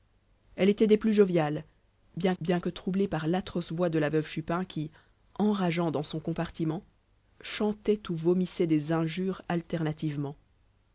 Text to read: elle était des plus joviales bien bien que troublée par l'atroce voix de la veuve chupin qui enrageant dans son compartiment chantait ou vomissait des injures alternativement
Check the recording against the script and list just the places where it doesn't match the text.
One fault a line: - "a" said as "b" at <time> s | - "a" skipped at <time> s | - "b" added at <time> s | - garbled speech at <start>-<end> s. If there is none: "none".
none